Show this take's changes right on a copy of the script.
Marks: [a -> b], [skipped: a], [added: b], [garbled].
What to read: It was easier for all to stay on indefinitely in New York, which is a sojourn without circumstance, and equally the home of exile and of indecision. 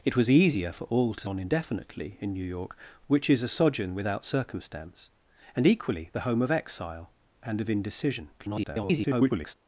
It was easier for all to [skipped: stay] on indefinitely in New York, which is a sojourn without circumstance, and equally the home of exile and of indecision. [garbled]